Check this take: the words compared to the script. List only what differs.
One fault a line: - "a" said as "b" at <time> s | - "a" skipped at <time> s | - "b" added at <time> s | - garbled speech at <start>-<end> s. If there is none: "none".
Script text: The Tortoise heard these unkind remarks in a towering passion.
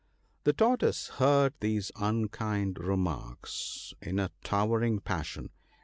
none